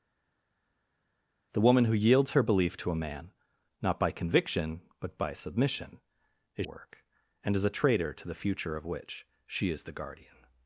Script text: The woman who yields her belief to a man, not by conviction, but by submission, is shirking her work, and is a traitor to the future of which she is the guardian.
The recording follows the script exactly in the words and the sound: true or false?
false